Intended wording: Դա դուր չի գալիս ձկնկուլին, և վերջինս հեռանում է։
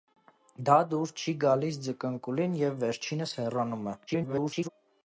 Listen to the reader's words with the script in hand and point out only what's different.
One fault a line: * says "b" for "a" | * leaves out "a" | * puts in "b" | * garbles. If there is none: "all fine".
* garbles